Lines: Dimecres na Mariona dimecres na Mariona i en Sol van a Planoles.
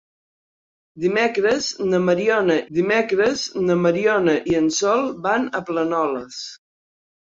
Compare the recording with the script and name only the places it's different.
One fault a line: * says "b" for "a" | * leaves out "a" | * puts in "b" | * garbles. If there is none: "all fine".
all fine